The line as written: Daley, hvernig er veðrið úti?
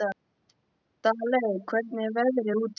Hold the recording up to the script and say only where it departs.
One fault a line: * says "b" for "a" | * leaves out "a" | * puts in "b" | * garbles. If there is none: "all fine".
all fine